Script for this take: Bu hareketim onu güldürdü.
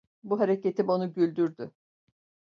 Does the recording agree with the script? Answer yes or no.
yes